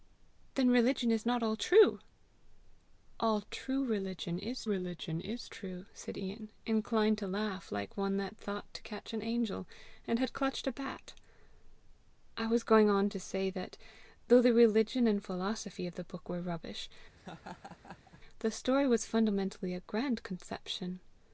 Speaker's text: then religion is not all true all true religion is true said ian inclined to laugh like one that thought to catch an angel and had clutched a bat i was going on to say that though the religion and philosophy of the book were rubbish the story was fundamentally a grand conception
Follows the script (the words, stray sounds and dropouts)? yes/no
no